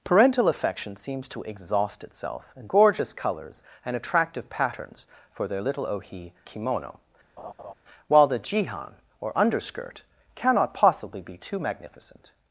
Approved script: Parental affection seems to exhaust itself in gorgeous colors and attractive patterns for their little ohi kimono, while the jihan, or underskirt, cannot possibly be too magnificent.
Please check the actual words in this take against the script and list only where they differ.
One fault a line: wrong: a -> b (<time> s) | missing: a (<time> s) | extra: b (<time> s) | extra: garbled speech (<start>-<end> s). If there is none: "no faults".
no faults